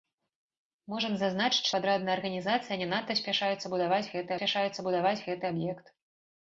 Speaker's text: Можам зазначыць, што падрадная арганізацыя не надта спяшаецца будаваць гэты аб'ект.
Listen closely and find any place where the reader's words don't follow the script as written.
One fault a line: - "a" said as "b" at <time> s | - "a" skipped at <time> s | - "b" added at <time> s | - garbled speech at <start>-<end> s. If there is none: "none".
- "што" skipped at 1.7 s
- "спяшаецца будаваць гэты" added at 4.4 s